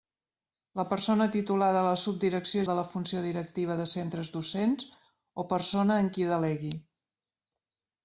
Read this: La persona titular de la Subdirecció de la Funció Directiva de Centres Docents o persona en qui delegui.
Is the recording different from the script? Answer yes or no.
no